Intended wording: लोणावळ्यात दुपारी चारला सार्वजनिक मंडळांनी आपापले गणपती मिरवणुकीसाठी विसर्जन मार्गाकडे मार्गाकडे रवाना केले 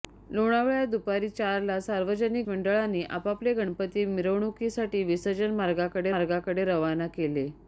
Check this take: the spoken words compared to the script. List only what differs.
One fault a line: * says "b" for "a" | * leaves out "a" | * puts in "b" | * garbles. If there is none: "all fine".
all fine